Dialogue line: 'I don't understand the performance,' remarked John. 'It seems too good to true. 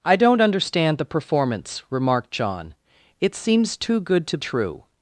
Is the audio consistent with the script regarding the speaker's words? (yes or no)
yes